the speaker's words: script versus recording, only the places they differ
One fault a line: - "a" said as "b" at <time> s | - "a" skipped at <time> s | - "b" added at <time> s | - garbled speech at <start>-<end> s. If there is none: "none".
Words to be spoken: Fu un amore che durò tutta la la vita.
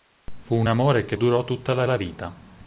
none